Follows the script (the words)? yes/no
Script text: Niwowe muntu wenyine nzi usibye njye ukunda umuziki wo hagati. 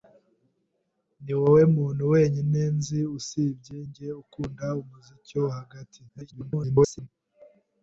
no